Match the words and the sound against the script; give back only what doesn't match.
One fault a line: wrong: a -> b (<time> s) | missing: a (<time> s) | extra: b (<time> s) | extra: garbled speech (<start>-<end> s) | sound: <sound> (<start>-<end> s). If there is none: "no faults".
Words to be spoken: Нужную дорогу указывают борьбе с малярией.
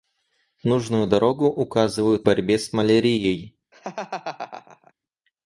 sound: laugh (3.7-4.9 s)